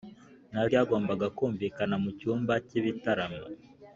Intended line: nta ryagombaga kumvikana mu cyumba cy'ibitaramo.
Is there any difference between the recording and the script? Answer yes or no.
no